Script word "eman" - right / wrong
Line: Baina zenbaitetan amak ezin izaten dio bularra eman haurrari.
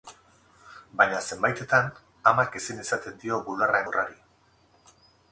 wrong